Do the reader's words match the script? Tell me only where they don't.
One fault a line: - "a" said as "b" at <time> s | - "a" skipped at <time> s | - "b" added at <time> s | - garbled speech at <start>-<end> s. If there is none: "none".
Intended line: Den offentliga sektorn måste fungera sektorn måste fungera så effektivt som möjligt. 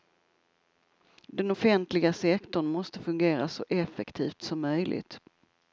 - "sektorn måste fungera" skipped at 3.5 s